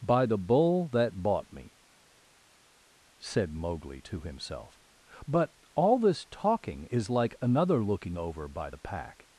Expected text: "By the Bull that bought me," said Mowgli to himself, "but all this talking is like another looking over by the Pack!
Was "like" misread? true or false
false